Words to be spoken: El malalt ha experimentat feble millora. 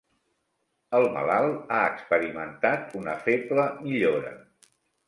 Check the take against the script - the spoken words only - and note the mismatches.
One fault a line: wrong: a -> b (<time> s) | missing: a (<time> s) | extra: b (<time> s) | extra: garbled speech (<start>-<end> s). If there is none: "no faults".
extra: una (3.0 s)